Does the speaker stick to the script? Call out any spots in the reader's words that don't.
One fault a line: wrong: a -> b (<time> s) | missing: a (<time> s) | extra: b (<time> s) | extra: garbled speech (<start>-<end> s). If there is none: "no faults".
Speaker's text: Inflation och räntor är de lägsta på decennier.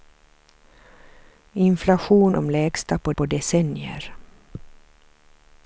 missing: och räntor är (2.4 s)
extra: på (3.1 s)